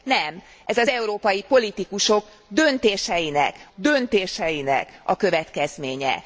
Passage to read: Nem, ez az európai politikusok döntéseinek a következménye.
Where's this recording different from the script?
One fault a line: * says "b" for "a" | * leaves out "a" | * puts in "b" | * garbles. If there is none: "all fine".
* puts in "döntéseinek"